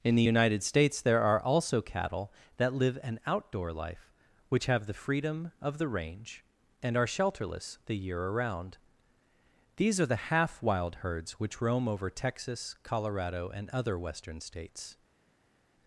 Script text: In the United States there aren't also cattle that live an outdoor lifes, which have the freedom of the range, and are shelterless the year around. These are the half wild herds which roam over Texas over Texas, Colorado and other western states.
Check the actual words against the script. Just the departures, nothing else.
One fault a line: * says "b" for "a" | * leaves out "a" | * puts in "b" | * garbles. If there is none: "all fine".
* says "are" for "aren't"
* says "life" for "lifes"
* leaves out "over Texas"